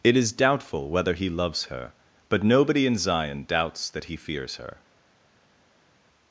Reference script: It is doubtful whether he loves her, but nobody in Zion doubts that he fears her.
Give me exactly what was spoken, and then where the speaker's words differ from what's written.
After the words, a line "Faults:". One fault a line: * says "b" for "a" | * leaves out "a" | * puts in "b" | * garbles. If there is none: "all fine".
It is doubtful whether he loves her, but nobody in Zion doubts that he fears her.
Faults:
all fine